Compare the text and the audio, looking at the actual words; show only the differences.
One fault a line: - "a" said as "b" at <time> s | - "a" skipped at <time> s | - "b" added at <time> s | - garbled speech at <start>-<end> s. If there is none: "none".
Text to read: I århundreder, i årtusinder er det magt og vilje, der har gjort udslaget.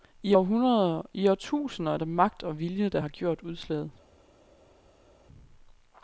none